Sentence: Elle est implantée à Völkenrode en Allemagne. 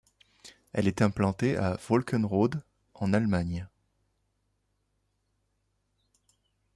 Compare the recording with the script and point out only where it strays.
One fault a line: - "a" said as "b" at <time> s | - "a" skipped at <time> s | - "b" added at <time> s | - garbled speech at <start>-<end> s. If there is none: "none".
none